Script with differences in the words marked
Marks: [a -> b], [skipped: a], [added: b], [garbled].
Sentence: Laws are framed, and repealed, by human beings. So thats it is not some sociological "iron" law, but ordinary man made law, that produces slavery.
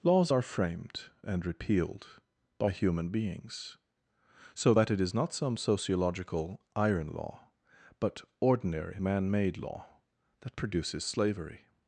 Laws are framed, and repealed, by human beings. So [thats -> that] it is not some sociological "iron" law, but ordinary man made law, that produces slavery.